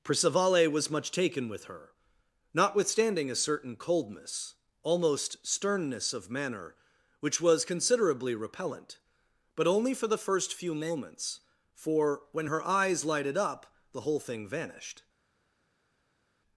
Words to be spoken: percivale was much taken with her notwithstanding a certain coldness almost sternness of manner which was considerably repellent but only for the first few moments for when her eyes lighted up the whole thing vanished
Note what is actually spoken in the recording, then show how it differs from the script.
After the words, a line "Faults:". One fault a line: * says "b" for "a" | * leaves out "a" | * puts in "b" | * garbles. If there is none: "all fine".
percivale was much taken with her notwithstanding a certain coldness almost sternness of manner which was considerably repellent but only for the first few moments for when her eyes lighted up the whole thing vanished
Faults:
all fine